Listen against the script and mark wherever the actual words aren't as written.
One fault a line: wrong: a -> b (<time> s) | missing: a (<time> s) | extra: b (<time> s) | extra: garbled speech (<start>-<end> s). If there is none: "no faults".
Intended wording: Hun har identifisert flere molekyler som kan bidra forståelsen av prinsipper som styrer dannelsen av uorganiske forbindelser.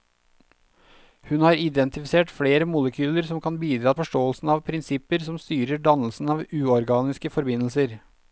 no faults